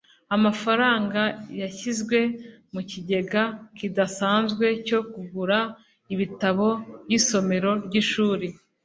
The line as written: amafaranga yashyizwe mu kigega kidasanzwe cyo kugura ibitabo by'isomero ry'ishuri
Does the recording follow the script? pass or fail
pass